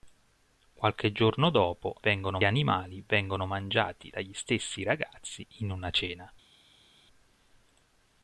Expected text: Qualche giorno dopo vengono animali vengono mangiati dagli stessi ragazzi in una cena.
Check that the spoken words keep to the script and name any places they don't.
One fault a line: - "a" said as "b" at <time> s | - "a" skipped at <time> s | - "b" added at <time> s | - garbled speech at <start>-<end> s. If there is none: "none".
none